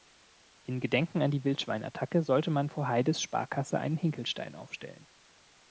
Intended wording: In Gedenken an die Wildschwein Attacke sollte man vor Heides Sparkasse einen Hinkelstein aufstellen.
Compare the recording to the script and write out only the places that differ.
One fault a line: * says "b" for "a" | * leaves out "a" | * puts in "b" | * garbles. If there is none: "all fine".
all fine